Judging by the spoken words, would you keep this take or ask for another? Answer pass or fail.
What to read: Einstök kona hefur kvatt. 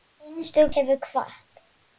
fail